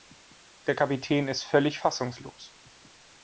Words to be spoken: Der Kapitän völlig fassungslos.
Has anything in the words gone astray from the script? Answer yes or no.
yes